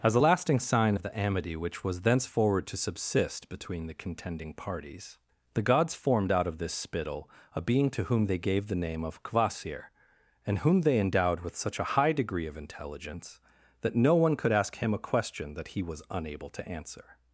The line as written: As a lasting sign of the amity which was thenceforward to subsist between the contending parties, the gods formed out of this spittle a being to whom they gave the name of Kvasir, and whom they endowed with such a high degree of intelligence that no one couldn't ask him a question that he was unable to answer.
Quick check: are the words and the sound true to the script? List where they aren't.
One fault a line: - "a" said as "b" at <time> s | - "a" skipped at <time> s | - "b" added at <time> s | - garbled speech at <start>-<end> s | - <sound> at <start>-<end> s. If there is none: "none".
- "couldn't" said as "could" at 14.3 s